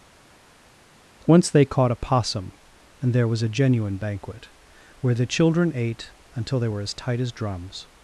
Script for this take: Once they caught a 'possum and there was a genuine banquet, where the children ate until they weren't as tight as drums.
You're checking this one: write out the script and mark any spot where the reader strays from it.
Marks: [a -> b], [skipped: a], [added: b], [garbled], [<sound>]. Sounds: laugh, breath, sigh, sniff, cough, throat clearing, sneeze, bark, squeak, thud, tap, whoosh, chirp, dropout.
Once they caught a 'possum and there was a genuine banquet, where the children ate until they [weren't -> were] as tight as drums.